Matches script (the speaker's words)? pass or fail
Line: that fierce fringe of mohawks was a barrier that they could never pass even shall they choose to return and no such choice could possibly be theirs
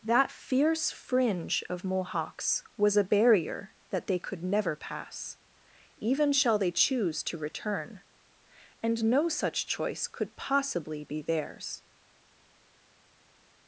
pass